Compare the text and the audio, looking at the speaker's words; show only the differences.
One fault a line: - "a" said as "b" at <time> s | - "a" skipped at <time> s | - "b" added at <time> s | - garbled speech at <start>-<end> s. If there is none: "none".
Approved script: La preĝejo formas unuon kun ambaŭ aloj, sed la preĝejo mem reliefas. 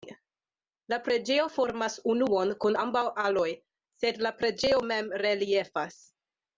none